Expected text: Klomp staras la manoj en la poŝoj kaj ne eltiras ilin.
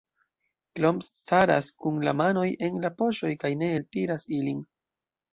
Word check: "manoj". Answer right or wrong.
right